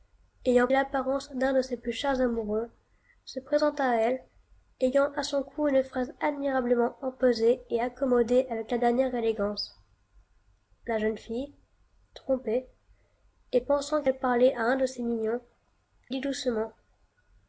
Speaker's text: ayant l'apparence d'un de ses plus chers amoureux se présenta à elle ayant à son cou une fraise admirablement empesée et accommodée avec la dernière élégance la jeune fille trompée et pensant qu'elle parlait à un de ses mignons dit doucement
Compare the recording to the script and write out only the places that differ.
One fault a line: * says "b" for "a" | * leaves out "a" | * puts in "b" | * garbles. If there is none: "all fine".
all fine